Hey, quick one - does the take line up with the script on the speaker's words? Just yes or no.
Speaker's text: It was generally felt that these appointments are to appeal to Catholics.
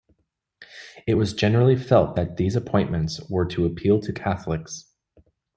no